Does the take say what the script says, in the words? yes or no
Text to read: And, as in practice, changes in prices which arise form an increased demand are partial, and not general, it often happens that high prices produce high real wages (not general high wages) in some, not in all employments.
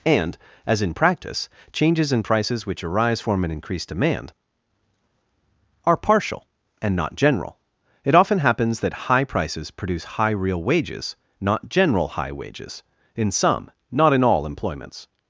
yes